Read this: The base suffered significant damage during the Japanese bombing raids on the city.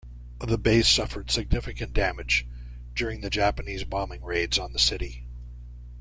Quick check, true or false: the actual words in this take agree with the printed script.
true